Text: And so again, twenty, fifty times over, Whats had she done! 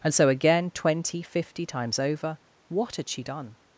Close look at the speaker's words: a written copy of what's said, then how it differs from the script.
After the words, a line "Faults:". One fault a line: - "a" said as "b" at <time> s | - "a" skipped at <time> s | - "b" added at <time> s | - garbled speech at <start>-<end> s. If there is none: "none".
And so again, twenty, fifty times over, What had she done!
Faults:
- "Whats" said as "What" at 2.7 s